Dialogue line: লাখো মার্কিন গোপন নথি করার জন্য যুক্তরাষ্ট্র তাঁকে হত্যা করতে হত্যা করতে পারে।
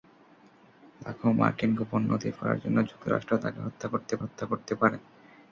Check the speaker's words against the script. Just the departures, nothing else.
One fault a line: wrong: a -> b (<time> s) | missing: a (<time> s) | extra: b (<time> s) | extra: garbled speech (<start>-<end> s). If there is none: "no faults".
no faults